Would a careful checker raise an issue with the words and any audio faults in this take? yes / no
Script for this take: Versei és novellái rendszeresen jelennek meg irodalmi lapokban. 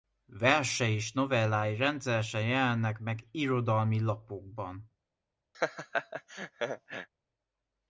yes